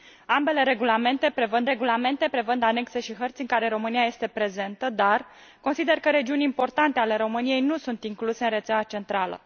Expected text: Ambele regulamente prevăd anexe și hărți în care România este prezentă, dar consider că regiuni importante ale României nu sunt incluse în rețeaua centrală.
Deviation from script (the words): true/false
true